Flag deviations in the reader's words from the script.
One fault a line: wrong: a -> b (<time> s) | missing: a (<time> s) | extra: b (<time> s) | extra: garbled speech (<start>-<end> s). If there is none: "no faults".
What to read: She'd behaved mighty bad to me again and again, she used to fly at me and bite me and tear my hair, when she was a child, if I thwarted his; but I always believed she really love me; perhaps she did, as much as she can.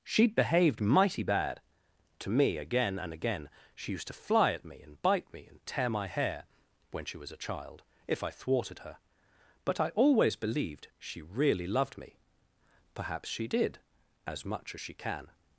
wrong: his -> her (8.8 s)
wrong: love -> loved (11.7 s)